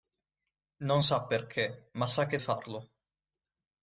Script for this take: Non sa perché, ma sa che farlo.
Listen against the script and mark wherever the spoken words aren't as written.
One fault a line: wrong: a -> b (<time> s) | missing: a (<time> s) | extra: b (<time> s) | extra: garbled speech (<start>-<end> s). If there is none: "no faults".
no faults